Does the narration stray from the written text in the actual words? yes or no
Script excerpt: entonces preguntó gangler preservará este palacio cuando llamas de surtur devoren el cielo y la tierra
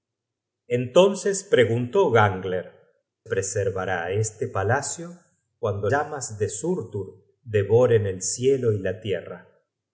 no